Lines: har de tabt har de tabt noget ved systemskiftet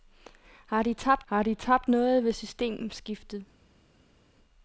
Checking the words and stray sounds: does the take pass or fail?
pass